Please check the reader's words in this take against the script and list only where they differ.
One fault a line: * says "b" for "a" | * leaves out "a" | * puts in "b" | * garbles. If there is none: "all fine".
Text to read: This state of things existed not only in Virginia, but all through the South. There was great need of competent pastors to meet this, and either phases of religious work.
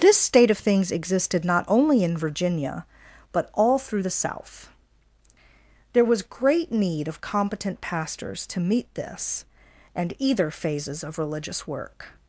all fine